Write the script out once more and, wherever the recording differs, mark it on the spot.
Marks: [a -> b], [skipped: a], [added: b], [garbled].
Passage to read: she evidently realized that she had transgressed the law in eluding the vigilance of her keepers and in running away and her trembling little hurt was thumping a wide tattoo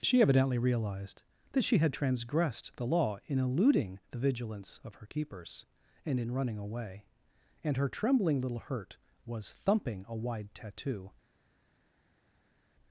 she evidently realized that she had transgressed the law in eluding the vigilance of her keepers and in running away and her trembling little hurt was thumping a wide tattoo